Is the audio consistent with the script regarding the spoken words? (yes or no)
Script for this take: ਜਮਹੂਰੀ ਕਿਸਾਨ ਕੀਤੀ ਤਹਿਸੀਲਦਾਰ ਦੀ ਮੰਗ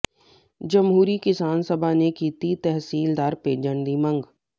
no